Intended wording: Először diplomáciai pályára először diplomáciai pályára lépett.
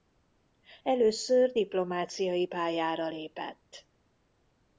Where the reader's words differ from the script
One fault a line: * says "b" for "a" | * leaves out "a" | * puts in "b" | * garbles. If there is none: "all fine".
* leaves out "először diplomáciai pályára"